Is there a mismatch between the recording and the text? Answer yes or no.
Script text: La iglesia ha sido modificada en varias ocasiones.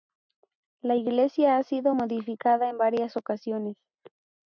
no